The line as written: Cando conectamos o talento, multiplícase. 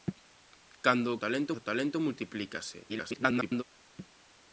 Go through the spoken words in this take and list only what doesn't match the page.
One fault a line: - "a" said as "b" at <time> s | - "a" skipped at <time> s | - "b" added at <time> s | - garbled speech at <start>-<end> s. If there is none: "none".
- "conectamos" said as "talento" at 1.2 s
- garbled speech at 2.9-3.6 s